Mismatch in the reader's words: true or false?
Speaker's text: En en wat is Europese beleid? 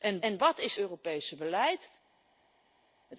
false